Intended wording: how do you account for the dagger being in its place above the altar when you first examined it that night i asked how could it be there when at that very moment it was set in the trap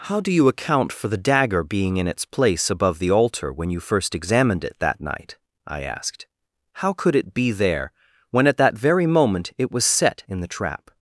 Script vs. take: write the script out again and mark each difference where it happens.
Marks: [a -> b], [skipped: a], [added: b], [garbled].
how do you account for the dagger being in its place above the altar when you first examined it that night i asked how could it be there when at that very moment it was set in the trap